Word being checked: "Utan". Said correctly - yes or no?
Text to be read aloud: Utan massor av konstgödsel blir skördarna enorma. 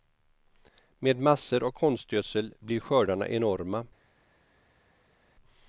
no